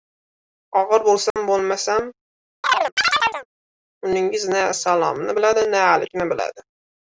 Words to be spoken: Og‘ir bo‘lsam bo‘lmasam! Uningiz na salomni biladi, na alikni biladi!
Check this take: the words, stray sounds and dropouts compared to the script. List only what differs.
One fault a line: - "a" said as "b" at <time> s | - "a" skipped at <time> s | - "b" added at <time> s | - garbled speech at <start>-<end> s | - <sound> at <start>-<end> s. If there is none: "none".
- dropout at 1.3-1.4 s
- chirp at 2.6-3.5 s